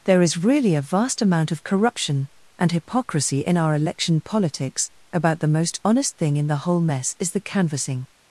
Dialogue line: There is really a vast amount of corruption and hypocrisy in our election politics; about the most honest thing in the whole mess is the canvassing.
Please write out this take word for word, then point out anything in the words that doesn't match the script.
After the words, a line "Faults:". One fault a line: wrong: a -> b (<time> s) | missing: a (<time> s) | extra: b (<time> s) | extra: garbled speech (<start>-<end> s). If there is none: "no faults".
There is really a vast amount of corruption and hypocrisy in our election politics; about the most honest thing in the whole mess is the canvassing.
Faults:
no faults